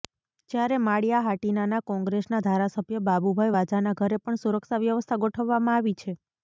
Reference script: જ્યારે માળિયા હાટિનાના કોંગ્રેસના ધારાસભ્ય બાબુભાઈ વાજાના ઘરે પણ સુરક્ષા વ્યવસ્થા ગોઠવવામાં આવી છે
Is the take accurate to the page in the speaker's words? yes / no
yes